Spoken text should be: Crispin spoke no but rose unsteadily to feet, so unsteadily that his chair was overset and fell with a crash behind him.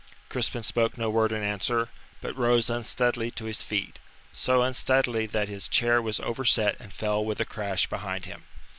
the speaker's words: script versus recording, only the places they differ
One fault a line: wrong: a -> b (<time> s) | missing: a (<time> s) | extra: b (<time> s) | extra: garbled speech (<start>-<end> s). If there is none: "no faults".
extra: word in answer (1.1 s)
extra: his (3.5 s)